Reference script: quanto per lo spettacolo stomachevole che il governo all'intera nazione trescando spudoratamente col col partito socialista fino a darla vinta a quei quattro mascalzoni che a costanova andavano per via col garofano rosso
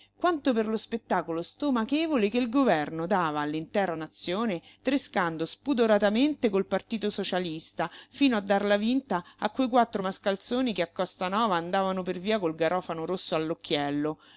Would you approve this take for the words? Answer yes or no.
no